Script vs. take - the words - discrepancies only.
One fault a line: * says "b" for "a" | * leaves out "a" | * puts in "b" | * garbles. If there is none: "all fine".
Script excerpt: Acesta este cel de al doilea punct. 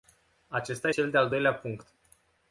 * leaves out "este"